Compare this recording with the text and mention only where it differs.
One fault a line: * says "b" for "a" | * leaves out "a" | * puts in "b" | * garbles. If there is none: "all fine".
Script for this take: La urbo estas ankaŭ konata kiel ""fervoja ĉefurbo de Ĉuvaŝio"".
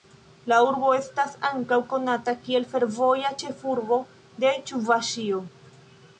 all fine